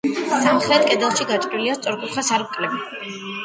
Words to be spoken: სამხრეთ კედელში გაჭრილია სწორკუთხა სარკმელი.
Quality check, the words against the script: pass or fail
pass